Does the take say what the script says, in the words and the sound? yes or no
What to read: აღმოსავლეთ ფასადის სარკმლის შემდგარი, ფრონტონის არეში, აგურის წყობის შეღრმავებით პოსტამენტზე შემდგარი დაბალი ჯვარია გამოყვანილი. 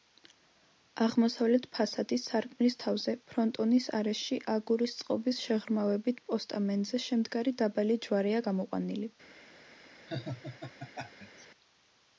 no